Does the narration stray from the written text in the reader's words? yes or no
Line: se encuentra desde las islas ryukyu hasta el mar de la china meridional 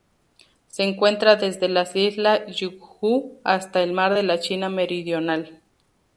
no